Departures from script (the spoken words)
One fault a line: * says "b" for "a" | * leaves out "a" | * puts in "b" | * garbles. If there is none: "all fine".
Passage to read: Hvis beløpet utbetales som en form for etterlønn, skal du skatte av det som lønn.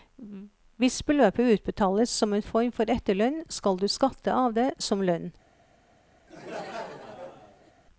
all fine